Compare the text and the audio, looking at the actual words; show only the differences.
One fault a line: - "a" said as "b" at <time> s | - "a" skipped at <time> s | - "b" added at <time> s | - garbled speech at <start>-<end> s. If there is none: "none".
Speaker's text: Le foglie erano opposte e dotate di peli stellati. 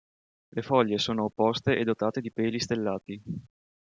- "erano" said as "sono" at 1.0 s